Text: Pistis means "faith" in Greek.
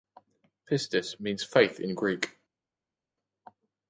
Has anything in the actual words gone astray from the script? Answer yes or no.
no